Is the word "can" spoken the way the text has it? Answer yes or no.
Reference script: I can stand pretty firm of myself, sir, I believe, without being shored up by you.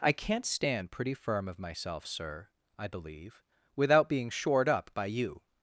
no